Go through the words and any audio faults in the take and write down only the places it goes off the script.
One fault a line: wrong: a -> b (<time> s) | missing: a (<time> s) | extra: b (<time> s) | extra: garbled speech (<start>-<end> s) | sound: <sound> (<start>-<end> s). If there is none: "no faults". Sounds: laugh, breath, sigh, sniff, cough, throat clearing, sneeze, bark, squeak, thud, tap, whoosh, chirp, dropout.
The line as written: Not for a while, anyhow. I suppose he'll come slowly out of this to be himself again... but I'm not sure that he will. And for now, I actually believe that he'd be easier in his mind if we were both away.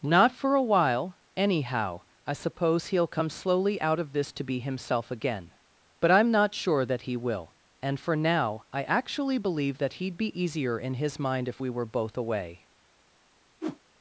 sound: whoosh (13.6-13.8 s)